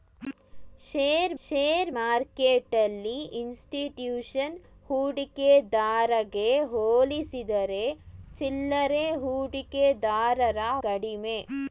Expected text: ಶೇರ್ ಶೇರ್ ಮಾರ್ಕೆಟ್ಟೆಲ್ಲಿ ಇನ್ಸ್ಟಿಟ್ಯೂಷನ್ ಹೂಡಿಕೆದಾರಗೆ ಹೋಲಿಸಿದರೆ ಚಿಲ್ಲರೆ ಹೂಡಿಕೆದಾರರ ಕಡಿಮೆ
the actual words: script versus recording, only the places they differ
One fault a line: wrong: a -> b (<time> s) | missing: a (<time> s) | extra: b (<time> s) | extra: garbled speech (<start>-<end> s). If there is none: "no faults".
no faults